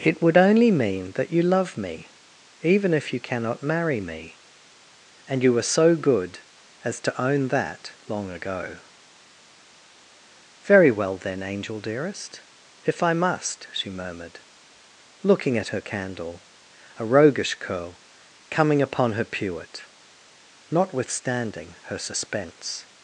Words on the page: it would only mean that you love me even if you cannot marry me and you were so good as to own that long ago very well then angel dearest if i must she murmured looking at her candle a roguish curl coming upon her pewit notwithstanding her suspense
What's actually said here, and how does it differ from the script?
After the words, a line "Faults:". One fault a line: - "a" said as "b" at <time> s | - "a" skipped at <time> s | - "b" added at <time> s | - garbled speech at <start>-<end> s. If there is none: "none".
it would only mean that you love me even if you cannot marry me and you were so good as to own that long ago very well then angel dearest if i must she murmured looking at her candle a roguish curl coming upon her pewit notwithstanding her suspense
Faults:
none